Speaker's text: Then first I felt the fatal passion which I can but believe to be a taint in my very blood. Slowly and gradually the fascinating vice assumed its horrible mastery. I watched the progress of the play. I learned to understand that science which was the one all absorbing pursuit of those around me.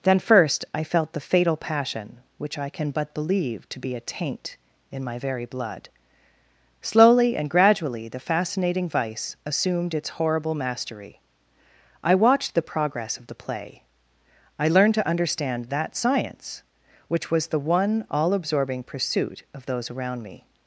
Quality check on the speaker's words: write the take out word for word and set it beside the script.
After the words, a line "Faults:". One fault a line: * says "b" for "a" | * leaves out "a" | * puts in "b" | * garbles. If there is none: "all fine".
Then first I felt the fatal passion which I can but believe to be a taint in my very blood. Slowly and gradually the fascinating vice assumed its horrible mastery. I watched the progress of the play. I learned to understand that science which was the one all absorbing pursuit of those around me.
Faults:
all fine